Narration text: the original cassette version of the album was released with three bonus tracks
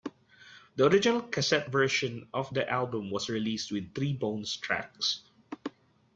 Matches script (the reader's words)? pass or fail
pass